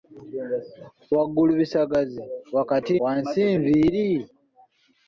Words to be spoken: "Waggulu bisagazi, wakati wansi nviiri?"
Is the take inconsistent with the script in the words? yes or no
no